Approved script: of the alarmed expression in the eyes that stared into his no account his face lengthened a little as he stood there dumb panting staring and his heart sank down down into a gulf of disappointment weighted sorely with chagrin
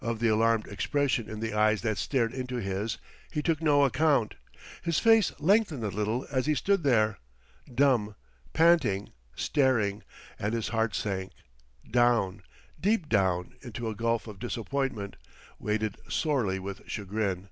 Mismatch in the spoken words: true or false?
true